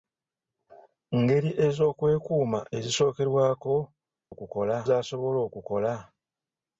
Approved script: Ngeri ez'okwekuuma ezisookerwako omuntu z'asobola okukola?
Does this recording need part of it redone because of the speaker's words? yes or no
yes